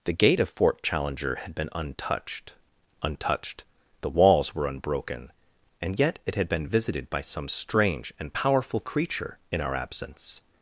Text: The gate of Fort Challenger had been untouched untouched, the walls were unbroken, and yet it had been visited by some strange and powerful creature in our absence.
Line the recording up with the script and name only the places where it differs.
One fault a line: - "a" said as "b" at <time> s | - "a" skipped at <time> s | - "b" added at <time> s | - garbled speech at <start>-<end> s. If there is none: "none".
none